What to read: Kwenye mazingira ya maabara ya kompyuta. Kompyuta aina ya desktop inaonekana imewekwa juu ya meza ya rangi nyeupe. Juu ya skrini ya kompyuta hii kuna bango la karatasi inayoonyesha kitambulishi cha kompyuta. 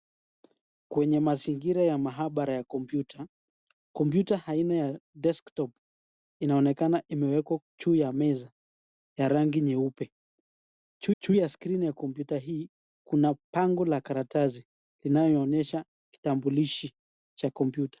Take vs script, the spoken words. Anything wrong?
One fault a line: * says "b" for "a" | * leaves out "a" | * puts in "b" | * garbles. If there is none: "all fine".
* puts in "juu"